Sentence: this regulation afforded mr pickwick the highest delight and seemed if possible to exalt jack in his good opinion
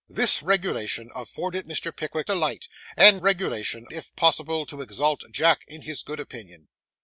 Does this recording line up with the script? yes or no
no